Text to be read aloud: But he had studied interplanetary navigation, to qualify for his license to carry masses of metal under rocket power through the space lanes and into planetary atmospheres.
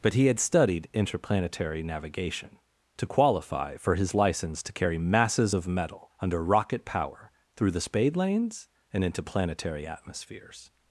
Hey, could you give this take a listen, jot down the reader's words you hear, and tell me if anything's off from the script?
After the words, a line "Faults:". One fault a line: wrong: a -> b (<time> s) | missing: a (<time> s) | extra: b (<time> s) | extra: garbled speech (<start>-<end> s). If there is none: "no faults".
But he had studied interplanetary navigation, to qualify for his license to carry masses of metal under rocket power through the spade lanes and into planetary atmospheres.
Faults:
wrong: space -> spade (7.8 s)